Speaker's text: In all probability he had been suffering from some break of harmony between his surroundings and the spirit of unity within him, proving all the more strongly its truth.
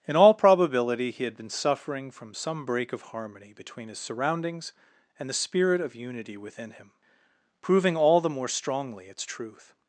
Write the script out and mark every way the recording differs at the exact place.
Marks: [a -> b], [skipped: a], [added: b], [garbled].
In all probability he had been suffering from some break of harmony between his surroundings and the spirit of unity within him, proving all the more strongly its truth.